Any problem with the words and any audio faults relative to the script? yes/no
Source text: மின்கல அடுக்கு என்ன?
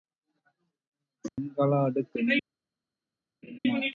yes